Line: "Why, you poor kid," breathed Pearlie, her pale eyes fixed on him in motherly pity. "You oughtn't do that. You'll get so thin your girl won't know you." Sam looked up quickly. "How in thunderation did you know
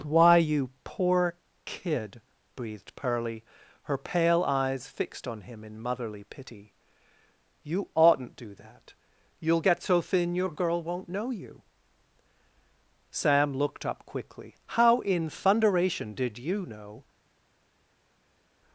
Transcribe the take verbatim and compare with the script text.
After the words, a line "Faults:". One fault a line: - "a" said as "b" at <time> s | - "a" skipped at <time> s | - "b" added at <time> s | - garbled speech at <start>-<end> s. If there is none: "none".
"Why, you poor kid," breathed Pearlie, her pale eyes fixed on him in motherly pity. "You oughtn't do that. You'll get so thin your girl won't know you." Sam looked up quickly. "How in thunderation did you know
Faults:
none